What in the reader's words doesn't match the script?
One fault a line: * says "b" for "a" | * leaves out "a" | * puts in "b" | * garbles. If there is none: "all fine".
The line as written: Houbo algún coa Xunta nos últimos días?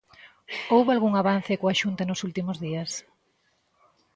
* puts in "avance"